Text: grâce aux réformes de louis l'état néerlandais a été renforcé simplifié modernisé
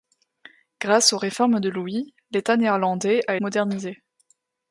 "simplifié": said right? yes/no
no